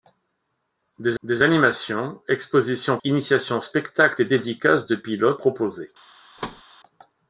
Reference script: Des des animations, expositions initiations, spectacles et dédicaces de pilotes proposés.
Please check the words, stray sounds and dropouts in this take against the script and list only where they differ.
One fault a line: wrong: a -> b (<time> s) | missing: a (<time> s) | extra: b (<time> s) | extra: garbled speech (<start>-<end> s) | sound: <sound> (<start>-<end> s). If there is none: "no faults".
sound: thud (6.4-6.6 s)